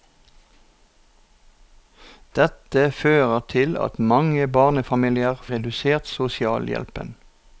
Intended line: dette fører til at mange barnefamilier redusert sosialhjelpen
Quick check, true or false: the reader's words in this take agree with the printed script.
true